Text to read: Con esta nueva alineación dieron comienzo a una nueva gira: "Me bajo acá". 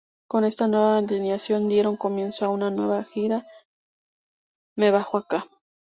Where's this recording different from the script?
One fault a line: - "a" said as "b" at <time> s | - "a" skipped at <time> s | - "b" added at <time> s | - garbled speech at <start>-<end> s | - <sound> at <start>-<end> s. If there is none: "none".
none